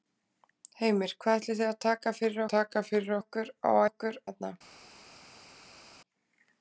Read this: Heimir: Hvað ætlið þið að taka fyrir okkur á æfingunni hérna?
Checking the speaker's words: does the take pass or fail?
fail